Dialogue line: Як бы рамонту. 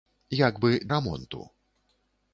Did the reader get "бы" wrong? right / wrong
right